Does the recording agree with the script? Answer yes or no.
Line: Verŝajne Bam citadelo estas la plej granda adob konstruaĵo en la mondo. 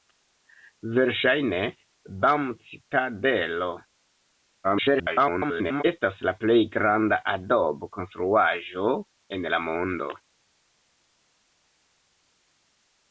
no